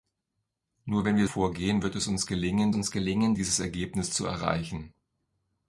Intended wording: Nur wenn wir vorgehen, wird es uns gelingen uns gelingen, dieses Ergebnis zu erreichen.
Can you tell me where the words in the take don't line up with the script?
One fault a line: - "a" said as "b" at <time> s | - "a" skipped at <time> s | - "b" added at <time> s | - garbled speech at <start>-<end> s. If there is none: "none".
none